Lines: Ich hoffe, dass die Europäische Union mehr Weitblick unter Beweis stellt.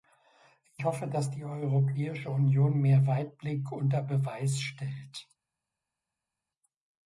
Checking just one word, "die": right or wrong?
right